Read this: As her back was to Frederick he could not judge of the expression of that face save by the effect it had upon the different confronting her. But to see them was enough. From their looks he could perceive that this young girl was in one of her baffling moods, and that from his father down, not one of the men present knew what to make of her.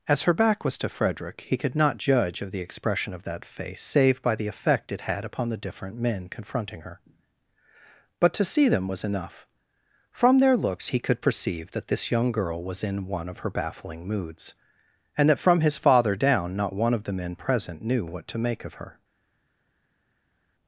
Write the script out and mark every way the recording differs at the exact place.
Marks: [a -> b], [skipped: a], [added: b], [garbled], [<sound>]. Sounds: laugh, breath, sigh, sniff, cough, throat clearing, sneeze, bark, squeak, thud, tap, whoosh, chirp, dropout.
As her back was to Frederick he could not judge of the expression of that face save by the effect it had upon the different [added: men] confronting her. But to see them was enough. From their looks he could perceive that this young girl was in one of her baffling moods, and that from his father down, not one of the men present knew what to make of her.